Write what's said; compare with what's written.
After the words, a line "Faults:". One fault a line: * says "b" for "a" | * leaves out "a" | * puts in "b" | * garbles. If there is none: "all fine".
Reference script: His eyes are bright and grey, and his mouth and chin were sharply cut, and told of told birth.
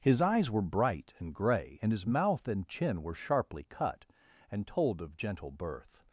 His eyes were bright and grey, and his mouth and chin were sharply cut, and told of gentle birth.
Faults:
* says "were" for "are"
* says "gentle" for "told"